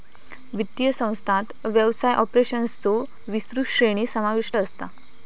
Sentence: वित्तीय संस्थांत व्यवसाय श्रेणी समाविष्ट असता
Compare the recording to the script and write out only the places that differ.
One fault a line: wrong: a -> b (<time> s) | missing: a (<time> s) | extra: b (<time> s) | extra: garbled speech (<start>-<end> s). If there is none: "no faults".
extra: ऑपरेशन्सचो विस्तृत (2.1 s)